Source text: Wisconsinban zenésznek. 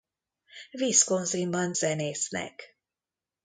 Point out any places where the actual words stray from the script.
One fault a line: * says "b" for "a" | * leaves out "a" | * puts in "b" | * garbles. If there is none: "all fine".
all fine